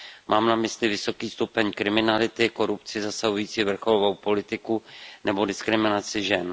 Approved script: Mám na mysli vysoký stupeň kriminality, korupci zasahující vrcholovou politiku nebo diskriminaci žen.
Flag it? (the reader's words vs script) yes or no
no